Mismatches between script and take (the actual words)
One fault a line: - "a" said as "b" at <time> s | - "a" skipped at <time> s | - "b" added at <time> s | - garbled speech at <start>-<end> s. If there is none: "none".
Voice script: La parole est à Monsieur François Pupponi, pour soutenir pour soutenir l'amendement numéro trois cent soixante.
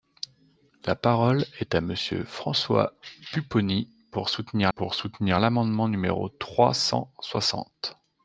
none